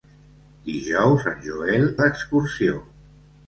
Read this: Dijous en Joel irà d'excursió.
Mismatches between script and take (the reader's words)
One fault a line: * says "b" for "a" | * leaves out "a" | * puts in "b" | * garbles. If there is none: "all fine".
* leaves out "irà"